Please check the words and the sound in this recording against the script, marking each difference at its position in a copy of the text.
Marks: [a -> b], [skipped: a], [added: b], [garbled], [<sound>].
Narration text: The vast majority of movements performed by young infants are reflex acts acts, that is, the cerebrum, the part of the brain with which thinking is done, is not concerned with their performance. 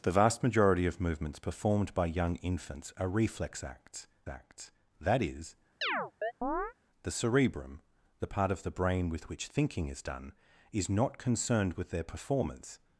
The vast majority of movements performed by young infants are reflex acts acts, that is, [chirp] the cerebrum, the part of the brain with which thinking is done, is not concerned with their performance.